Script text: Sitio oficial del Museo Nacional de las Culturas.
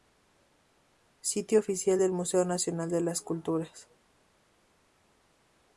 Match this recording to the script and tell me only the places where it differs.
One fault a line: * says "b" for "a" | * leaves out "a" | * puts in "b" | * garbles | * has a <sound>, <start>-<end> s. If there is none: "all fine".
all fine